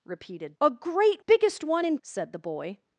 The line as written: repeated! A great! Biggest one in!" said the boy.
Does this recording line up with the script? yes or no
yes